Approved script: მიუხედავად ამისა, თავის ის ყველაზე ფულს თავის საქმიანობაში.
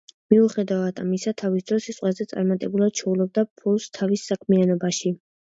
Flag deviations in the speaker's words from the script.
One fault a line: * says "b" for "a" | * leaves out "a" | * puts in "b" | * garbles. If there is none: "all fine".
* puts in "დროს"
* puts in "წარმატებულად შოულობდა"